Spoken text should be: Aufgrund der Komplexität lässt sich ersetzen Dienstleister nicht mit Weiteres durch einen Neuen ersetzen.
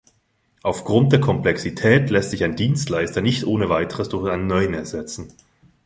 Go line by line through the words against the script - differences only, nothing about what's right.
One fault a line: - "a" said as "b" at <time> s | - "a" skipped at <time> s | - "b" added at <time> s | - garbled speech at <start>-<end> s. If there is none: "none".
- "ersetzen" said as "ein" at 2.4 s
- "mit" said as "ohne" at 3.5 s